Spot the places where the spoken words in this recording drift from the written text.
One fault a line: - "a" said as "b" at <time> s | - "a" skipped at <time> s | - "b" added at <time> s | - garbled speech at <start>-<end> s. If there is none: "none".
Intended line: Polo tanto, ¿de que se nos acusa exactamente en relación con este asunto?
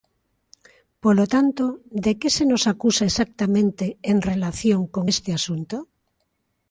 none